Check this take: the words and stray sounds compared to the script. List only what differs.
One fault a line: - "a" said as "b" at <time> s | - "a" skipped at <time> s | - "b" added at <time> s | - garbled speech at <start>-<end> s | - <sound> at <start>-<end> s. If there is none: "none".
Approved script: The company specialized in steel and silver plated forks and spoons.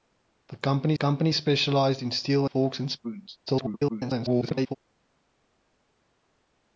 - "company" added at 0.9 s
- "and silver plated" skipped at 2.5 s
- garbled speech at 3.5-4.8 s